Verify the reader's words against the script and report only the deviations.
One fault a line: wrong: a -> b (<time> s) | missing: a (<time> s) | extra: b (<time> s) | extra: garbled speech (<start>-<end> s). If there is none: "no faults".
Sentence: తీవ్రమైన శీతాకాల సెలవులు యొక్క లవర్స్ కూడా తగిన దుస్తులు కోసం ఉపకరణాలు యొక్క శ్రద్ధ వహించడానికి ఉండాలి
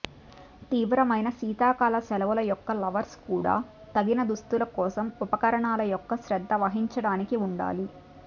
no faults